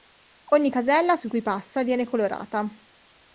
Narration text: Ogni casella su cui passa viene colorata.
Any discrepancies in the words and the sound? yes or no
no